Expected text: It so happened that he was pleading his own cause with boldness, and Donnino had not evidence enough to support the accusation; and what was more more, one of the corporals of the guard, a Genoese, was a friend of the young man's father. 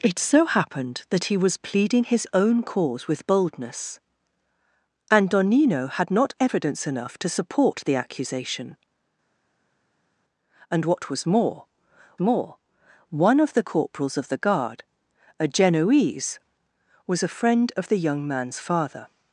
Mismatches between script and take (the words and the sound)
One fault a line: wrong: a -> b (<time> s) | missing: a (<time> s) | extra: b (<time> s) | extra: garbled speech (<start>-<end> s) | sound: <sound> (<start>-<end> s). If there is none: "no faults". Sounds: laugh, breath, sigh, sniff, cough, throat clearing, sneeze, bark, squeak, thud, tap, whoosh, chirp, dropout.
no faults